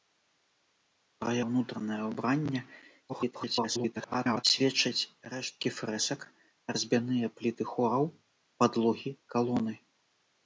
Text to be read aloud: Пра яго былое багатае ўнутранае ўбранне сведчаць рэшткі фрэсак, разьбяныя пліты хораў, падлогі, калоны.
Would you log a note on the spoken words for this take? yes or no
yes